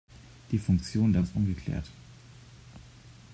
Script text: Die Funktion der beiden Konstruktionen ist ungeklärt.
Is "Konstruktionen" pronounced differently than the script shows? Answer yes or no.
yes